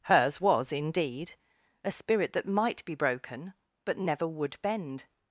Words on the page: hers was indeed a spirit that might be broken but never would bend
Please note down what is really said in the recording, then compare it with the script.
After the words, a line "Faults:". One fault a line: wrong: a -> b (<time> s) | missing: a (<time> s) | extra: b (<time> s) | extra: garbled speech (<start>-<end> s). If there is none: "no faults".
hers was indeed a spirit that might be broken but never would bend
Faults:
no faults